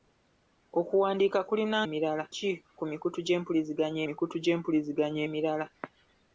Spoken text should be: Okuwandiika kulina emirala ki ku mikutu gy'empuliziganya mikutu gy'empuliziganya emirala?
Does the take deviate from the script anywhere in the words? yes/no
no